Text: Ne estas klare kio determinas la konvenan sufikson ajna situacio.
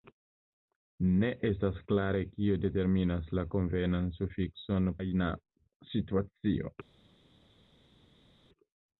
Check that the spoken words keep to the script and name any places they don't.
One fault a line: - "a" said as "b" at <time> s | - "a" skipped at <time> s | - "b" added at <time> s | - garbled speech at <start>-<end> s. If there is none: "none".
none